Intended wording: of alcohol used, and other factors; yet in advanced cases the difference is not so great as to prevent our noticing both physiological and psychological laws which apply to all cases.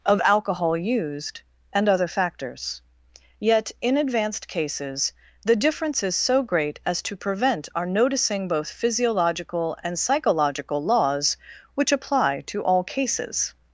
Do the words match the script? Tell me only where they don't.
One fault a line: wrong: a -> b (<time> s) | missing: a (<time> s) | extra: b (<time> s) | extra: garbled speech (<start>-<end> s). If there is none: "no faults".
missing: not (6.2 s)